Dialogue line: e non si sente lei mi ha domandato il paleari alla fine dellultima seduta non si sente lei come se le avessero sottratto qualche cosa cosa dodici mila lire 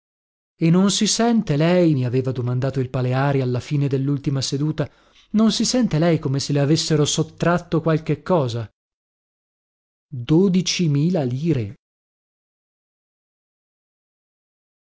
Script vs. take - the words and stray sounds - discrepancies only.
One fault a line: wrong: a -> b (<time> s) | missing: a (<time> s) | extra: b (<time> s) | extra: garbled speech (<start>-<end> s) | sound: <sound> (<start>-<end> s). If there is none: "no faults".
wrong: ha -> aveva (2.1 s)
missing: cosa (8.7 s)